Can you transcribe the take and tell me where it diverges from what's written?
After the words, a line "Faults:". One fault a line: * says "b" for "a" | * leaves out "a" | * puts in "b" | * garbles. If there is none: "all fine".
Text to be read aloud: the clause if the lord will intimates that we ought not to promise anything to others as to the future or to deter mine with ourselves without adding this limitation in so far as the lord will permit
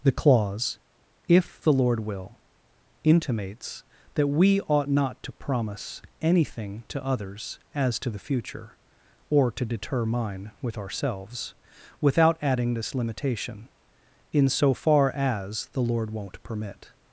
the clause if the lord will intimates that we ought not to promise anything to others as to the future or to deter mine with ourselves without adding this limitation in so far as the lord won't permit
Faults:
* says "won't" for "will"